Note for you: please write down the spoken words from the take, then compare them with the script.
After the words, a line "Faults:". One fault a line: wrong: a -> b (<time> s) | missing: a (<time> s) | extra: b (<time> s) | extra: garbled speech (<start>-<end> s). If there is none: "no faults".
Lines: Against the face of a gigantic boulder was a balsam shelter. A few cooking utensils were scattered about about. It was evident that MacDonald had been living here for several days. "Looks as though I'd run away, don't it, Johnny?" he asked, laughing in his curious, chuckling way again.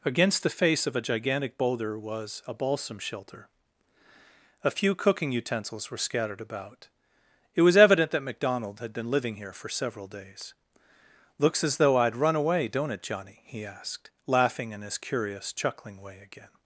Against the face of a gigantic boulder was a balsam shelter. A few cooking utensils were scattered about. It was evident that MacDonald had been living here for several days. "Looks as though I'd run away, don't it, Johnny?" he asked, laughing in his curious, chuckling way again.
Faults:
missing: about (6.9 s)